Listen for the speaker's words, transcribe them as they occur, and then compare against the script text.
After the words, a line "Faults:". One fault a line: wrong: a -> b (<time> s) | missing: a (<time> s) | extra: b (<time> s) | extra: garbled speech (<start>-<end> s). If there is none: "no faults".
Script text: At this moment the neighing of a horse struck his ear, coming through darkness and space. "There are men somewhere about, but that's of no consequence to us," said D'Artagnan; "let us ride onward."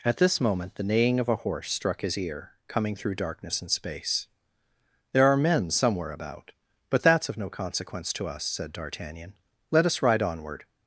At this moment the neighing of a horse struck his ear, coming through darkness and space. "There are men somewhere about, but that's of no consequence to us," said D'Artagnan; "let us ride onward."
Faults:
no faults